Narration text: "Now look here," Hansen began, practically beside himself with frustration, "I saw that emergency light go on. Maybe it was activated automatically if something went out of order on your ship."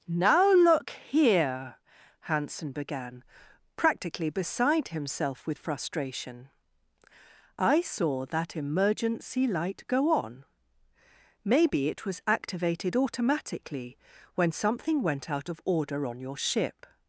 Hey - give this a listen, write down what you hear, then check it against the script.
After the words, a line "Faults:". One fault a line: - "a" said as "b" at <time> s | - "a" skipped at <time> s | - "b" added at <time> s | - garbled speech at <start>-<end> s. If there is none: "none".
"Now look here," Hansen began, practically beside himself with frustration, "I saw that emergency light go on. Maybe it was activated automatically when something went out of order on your ship."
Faults:
- "if" said as "when" at 14.3 s